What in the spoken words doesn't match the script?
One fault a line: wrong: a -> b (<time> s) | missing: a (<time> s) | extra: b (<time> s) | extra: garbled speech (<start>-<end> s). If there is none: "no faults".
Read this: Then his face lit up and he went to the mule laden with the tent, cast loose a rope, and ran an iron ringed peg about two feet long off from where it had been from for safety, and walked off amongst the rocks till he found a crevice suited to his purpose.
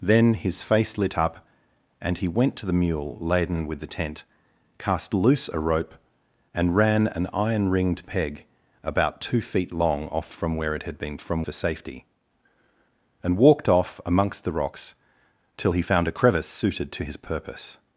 no faults